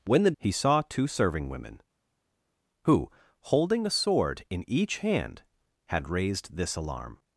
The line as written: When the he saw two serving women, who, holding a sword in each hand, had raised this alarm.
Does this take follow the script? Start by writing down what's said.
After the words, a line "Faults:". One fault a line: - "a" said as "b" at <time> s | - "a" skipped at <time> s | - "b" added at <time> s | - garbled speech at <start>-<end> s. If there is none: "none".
When the he saw two serving women, who, holding a sword in each hand, had raised this alarm.
Faults:
none